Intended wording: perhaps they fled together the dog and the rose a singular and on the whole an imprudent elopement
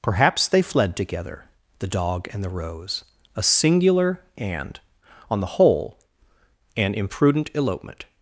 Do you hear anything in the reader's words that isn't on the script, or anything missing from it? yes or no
no